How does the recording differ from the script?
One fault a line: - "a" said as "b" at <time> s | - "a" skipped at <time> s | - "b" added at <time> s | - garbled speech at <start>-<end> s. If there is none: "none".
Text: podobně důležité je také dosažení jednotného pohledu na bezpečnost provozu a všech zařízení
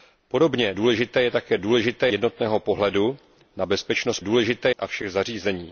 - "dosažení" said as "důležité" at 1.6 s
- "provozu" said as "důležité" at 4.2 s